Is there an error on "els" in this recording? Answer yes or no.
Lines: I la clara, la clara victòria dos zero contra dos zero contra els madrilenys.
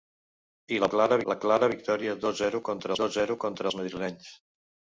no